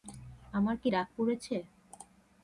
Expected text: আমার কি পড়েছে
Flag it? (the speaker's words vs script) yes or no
yes